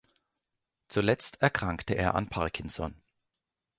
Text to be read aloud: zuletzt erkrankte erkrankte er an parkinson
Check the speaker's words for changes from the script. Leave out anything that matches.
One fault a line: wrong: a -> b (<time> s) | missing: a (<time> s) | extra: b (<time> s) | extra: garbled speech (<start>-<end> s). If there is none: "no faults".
missing: erkrankte (1.9 s)